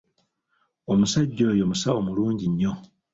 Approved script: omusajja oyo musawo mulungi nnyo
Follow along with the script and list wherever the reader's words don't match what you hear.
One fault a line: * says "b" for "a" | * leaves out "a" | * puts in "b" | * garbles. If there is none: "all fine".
all fine